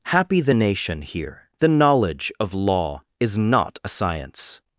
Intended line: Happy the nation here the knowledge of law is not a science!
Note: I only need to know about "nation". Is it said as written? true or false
true